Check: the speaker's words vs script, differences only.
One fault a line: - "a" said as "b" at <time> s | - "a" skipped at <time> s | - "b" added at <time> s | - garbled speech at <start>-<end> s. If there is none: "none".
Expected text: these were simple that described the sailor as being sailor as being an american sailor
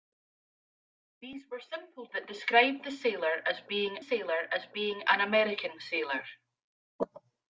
none